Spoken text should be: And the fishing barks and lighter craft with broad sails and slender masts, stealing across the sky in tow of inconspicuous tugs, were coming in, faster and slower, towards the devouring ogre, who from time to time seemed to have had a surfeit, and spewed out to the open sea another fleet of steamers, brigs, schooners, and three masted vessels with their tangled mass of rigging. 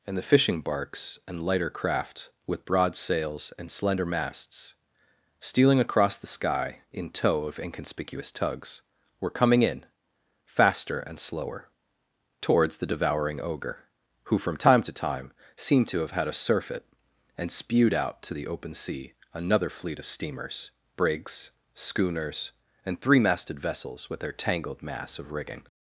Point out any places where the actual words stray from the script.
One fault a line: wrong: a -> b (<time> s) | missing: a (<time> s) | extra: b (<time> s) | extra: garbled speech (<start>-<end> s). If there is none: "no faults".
no faults